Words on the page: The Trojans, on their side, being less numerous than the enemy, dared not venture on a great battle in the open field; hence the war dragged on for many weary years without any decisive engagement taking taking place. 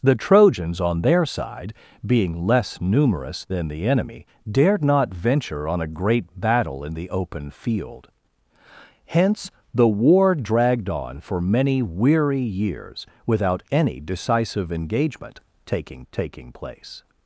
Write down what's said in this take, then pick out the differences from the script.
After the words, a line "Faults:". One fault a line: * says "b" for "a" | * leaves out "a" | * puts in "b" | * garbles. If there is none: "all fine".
The Trojans, on their side, being less numerous than the enemy, dared not venture on a great battle in the open field; hence the war dragged on for many weary years without any decisive engagement taking taking place.
Faults:
all fine